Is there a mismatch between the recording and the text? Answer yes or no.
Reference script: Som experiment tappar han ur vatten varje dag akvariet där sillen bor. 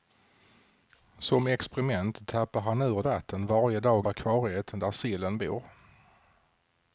no